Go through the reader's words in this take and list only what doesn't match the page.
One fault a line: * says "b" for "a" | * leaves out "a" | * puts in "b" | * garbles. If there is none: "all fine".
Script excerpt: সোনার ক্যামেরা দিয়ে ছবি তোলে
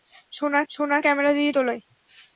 * puts in "সোনার"
* leaves out "ছবি"